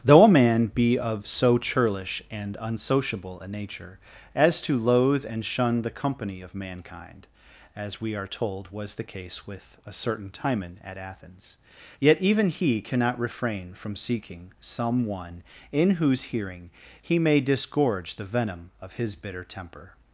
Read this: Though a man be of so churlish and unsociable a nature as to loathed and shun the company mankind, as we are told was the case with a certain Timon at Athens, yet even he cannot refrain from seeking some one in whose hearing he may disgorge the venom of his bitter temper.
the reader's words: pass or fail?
fail